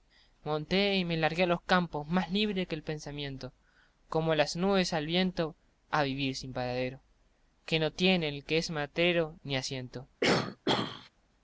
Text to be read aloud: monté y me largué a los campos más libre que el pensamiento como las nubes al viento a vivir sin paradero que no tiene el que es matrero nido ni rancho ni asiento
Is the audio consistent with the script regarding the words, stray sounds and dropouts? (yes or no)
no